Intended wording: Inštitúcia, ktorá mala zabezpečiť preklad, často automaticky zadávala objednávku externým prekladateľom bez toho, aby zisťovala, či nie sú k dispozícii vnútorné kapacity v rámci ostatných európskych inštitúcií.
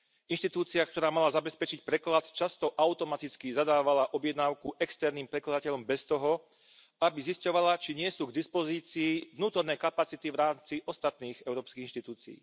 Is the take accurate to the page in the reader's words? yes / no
yes